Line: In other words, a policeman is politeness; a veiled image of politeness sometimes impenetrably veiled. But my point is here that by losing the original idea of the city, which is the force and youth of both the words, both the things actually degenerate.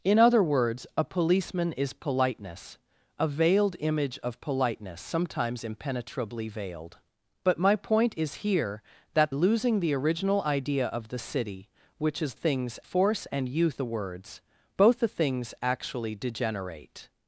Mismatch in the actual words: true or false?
true